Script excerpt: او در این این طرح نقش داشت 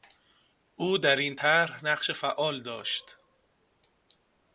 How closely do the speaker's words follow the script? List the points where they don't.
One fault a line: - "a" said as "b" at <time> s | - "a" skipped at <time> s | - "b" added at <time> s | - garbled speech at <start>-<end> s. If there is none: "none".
- "این" skipped at 1.4 s
- "فعال" added at 2.1 s